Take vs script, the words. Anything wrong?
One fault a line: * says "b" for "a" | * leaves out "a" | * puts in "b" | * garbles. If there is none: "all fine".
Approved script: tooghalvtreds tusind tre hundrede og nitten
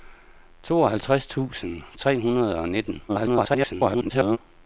* garbles